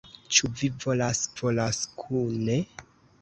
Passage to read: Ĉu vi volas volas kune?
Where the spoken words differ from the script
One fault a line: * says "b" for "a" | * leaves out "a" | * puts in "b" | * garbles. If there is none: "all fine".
all fine